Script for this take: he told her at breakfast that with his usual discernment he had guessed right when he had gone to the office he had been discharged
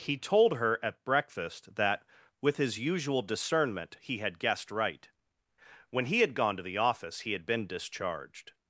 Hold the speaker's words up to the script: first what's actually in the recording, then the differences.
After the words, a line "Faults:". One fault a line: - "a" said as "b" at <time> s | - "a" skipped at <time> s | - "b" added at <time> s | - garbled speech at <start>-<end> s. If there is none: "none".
he told her at breakfast that with his usual discernment he had guessed right when he had gone to the office he had been discharged
Faults:
none